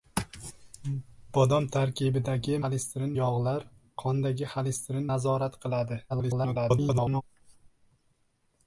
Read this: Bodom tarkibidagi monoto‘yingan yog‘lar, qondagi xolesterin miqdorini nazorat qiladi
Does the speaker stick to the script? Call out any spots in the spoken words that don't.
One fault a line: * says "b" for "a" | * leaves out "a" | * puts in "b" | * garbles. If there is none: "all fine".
* says "xolesterin" for "monoto‘yingan"
* leaves out "miqdorini"
* garbles